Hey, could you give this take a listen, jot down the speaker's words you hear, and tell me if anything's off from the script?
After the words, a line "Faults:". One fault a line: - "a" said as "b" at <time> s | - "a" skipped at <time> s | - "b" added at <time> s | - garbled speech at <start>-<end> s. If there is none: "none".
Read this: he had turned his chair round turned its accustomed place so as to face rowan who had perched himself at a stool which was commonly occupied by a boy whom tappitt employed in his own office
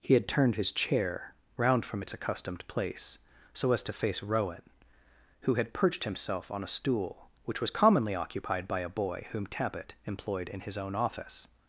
he had turned his chair round from its accustomed place so as to face rowan who had perched himself on a stool which was commonly occupied by a boy whom tappitt employed in his own office
Faults:
- "turned" said as "from" at 1.9 s
- "at" said as "on" at 6.5 s